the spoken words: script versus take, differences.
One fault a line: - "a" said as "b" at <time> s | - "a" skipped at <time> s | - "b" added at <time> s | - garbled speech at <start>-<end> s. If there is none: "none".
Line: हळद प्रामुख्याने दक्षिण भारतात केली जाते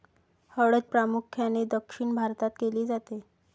none